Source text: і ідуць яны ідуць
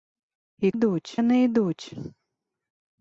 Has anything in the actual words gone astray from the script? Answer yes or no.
no